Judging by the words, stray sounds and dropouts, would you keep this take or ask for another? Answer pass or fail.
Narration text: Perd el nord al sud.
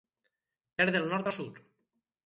pass